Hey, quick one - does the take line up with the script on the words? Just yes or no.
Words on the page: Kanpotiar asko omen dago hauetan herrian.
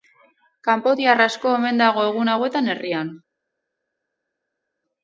no